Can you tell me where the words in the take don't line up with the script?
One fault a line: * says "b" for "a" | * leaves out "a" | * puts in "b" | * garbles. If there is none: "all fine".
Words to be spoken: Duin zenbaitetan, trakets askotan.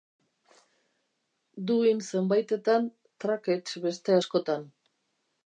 * puts in "beste"